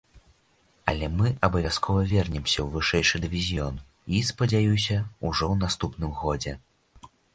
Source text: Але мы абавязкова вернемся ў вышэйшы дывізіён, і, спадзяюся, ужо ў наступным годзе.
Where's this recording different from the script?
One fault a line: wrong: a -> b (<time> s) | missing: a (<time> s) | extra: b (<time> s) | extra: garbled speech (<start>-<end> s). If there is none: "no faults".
no faults